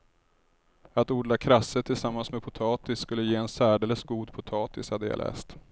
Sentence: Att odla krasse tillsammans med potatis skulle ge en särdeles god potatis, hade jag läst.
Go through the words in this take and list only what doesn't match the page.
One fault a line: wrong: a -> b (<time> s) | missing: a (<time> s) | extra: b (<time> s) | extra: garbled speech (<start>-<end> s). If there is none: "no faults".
no faults